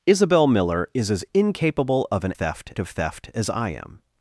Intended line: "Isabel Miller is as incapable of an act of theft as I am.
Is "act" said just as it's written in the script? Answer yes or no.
no